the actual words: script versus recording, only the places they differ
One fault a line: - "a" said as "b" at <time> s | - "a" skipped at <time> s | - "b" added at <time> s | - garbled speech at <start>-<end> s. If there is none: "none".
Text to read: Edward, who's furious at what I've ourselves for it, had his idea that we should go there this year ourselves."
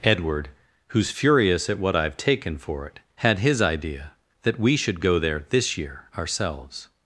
- "ourselves" said as "taken" at 2.2 s